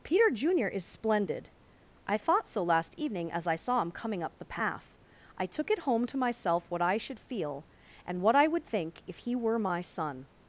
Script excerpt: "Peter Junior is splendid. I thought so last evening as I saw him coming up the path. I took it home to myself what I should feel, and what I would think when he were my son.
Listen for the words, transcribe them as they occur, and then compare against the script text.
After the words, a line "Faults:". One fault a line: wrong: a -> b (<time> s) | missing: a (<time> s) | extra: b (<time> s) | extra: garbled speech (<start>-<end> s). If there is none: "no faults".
"Peter Junior is splendid. I thought so last evening as I saw him coming up the path. I took it home to myself what I should feel, and what I would think if he were my son.
Faults:
wrong: when -> if (9.1 s)